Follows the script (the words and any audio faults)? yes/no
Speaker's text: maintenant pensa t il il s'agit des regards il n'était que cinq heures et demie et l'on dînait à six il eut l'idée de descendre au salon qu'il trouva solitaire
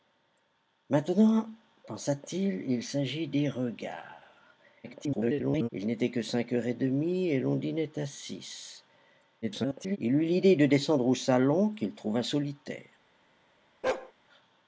no